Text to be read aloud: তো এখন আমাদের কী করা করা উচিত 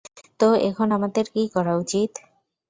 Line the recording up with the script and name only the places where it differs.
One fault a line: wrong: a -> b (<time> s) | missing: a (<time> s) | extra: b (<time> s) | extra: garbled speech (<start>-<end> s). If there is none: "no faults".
missing: করা (1.7 s)